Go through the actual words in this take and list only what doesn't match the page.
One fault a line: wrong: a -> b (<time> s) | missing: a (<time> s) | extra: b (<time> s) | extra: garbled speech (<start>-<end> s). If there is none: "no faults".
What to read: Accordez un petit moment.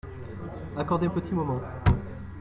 no faults